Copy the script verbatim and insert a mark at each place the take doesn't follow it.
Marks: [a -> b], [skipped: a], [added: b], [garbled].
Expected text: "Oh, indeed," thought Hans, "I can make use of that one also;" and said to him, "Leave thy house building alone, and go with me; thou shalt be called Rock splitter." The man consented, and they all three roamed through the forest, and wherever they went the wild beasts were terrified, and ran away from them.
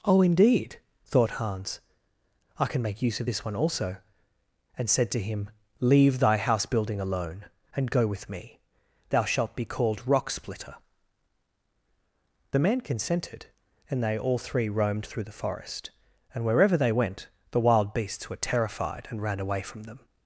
"Oh, indeed," thought Hans, "I can make use of [that -> this] one also;" and said to him, "Leave thy house building alone, and go with me; thou shalt be called Rock splitter." The man consented, and they all three roamed through the forest, and wherever they went the wild beasts were terrified, and ran away from them.